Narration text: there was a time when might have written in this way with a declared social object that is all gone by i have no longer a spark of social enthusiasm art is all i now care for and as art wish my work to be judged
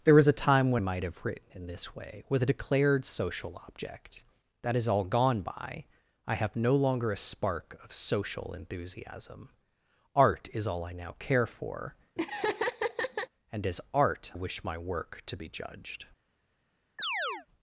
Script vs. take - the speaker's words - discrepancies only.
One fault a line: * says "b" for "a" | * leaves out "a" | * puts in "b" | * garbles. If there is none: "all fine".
all fine